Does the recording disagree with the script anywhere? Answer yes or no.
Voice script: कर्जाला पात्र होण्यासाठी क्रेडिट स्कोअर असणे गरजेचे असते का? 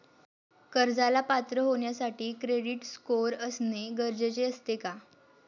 no